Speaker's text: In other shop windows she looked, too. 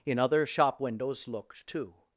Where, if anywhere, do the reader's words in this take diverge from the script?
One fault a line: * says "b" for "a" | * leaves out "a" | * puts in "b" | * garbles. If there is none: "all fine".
* leaves out "she"